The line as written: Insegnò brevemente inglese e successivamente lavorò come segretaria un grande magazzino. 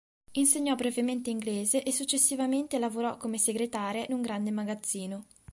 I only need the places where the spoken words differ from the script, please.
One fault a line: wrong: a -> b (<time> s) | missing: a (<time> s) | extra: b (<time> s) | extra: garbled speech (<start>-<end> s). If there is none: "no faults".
no faults